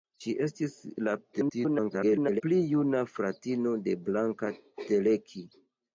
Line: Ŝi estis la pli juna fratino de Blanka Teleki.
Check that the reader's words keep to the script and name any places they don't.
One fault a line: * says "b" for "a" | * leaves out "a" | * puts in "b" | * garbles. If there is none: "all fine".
* garbles